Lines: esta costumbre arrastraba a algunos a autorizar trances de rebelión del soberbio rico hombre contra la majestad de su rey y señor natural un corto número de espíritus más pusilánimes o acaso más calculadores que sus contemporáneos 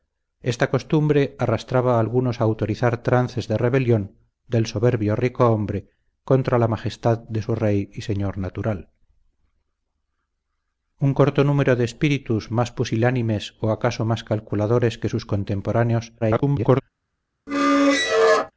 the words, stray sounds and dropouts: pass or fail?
fail